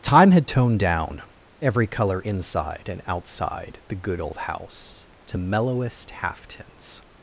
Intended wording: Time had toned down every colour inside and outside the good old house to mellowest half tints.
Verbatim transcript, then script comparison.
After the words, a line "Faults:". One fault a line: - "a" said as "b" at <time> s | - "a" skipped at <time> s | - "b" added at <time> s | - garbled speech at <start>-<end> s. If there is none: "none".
Time had toned down every colour inside and outside the good old house to mellowest half tints.
Faults:
none